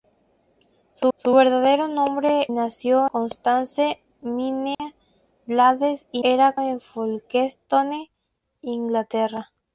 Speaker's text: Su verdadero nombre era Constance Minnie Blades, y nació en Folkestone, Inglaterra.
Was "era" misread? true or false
true